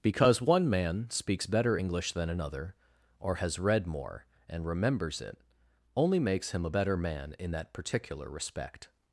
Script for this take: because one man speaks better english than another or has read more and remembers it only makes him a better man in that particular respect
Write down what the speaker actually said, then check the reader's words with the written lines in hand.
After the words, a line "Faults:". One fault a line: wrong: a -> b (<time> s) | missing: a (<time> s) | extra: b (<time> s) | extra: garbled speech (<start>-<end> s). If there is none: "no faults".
because one man speaks better english than another or has read more and remembers it only makes him a better man in that particular respect
Faults:
no faults